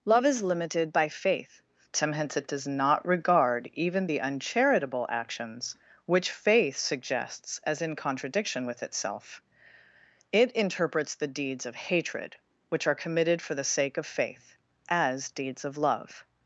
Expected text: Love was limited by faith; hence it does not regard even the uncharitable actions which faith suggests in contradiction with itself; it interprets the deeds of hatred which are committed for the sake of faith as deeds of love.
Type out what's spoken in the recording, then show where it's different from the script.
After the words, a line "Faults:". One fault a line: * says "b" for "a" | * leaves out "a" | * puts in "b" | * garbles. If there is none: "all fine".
Love is limited by faith; hence it does not regard even the uncharitable actions which faith suggests as in contradiction with itself; it interprets the deeds of hatred which are committed for the sake of faith as deeds of love.
Faults:
* says "is" for "was"
* puts in "as"